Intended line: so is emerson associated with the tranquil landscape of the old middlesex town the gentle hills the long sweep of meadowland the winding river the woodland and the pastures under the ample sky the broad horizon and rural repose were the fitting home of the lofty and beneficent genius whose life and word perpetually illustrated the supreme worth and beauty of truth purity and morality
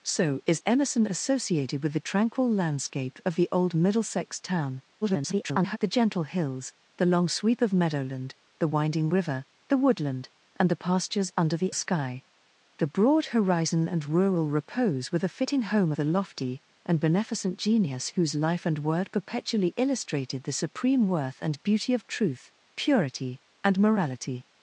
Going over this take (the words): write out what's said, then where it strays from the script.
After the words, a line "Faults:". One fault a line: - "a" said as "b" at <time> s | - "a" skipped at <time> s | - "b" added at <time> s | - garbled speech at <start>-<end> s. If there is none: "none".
so is emerson associated with the tranquil landscape of the old middlesex town [garbled] the gentle hills the long sweep of meadowland the winding river the woodland and the pastures under the sky the broad horizon and rural repose were the fitting home the lofty and beneficent genius whose life and word perpetually illustrated the supreme worth and beauty of truth purity and morality
Faults:
- garbled speech at 5.0-5.8 s
- "ample" skipped at 11.7 s
- "of" skipped at 15.9 s